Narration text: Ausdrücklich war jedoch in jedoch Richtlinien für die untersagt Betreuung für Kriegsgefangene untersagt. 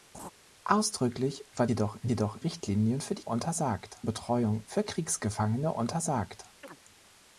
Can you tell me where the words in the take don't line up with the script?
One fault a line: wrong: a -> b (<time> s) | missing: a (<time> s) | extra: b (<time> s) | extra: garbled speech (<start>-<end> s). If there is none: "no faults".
no faults